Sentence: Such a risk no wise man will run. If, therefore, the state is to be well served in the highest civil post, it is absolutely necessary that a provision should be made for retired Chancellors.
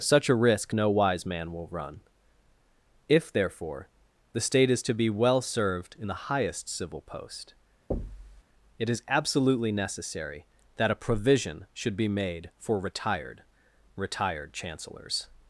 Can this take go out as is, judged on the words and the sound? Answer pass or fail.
fail